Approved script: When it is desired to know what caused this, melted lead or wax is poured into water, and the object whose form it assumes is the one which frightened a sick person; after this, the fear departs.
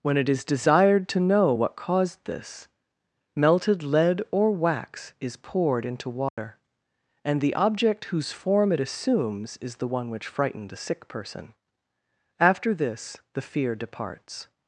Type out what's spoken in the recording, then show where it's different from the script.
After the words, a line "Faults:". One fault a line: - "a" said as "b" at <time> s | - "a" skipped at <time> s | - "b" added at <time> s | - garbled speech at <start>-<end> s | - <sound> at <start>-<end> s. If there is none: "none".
When it is desired to know what caused this, melted lead or wax is poured into water, and the object whose form it assumes is the one which frightened a sick person; after this, the fear departs.
Faults:
- dropout at 6.3-6.4 s